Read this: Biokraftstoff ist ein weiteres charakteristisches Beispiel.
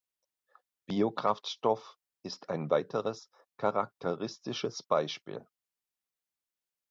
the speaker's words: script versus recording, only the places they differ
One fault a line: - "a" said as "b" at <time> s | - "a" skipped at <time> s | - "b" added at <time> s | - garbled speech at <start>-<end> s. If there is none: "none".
none